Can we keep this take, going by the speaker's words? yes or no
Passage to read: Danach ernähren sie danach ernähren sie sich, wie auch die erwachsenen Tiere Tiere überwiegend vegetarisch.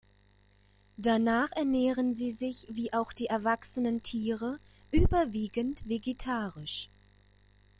no